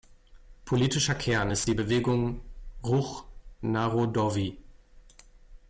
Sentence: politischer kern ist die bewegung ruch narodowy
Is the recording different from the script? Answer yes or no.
no